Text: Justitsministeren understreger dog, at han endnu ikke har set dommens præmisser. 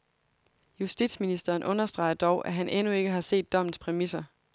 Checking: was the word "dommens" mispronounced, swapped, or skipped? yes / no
no